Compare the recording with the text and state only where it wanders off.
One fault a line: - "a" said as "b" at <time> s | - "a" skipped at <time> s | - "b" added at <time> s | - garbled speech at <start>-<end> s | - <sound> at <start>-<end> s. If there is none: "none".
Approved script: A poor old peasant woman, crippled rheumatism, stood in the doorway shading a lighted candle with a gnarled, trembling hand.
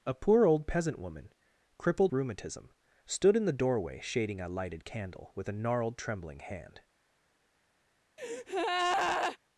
- breath at 8.2-9.4 s